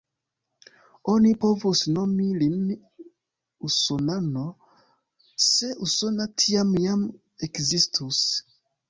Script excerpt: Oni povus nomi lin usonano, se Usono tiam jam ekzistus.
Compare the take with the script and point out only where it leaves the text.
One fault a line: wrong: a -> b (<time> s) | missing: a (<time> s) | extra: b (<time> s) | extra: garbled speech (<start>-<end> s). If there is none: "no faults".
no faults